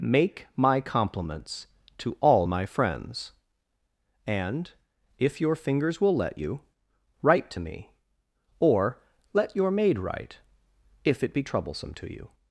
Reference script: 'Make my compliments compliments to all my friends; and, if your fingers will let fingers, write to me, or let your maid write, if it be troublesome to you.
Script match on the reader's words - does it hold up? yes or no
no